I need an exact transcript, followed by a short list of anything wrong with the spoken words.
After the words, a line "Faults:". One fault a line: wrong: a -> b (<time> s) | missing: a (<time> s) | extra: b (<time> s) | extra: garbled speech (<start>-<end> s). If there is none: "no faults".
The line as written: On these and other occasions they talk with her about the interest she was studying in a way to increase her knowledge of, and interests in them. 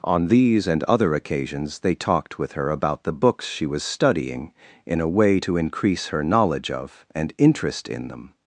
On these and other occasions they talked with her about the books she was studying in a way to increase her knowledge of, and interest in them.
Faults:
wrong: talk -> talked (1.9 s)
wrong: interest -> books (3.1 s)
wrong: interests -> interest (7.4 s)